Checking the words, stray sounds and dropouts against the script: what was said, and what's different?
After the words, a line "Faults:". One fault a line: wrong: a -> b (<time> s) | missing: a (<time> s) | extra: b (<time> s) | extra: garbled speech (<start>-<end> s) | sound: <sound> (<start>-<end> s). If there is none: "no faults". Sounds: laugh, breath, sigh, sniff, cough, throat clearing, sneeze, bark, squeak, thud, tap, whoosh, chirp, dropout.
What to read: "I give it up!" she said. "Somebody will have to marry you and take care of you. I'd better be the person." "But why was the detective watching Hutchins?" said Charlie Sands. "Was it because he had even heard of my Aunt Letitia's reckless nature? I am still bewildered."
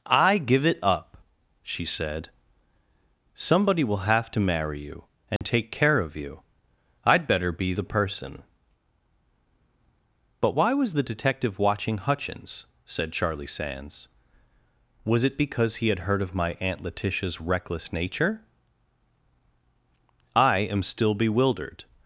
"I give it up!" she said. "Somebody will have to marry you and take care of you. I'd better be the person." "But why was the detective watching Hutchins?" said Charlie Sands. "Was it because he had heard of my Aunt Letitia's reckless nature? I am still bewildered."
Faults:
sound: dropout (5.4-5.4 s)
missing: even (16.0 s)